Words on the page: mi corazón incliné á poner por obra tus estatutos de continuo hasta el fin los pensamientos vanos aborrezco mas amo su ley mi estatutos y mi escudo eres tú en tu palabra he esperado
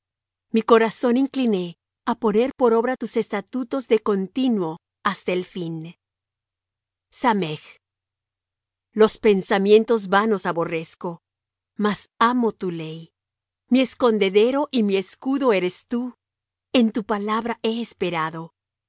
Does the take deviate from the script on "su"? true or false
true